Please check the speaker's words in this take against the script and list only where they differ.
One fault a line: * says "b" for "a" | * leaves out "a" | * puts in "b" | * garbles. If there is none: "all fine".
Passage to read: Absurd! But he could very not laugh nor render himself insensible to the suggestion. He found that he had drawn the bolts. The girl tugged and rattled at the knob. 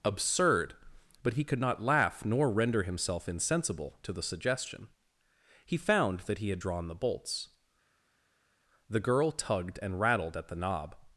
* leaves out "very"